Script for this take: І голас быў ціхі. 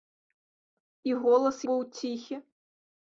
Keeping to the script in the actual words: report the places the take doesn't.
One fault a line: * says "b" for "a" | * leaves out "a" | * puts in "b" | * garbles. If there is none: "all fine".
all fine